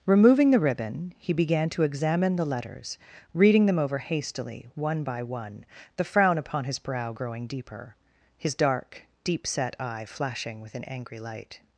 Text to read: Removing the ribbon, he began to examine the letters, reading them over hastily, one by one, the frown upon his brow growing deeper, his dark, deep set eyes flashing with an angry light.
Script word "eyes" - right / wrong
wrong